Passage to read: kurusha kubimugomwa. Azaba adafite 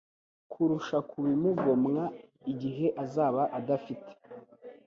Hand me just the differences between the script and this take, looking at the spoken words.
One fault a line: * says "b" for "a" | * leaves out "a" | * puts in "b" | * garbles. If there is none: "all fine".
* puts in "Igihe"